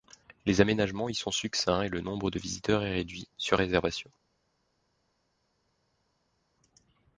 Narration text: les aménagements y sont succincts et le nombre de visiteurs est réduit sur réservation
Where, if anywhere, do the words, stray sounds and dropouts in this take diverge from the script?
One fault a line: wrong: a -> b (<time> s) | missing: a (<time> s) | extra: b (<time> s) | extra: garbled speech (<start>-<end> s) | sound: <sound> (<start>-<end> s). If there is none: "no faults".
no faults